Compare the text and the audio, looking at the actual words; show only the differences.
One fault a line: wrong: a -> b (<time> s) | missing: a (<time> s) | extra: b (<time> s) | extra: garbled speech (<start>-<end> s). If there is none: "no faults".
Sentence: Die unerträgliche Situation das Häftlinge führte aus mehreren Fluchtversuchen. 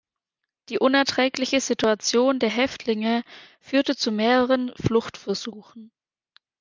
wrong: das -> der (2.4 s)
wrong: aus -> zu (4.0 s)